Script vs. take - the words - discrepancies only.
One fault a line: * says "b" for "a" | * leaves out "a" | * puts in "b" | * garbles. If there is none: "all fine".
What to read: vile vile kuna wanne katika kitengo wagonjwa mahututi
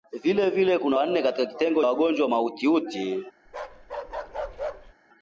all fine